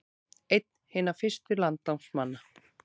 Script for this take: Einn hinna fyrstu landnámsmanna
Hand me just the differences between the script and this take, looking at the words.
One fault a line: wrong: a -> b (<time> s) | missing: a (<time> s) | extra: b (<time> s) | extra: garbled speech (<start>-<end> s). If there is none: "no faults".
no faults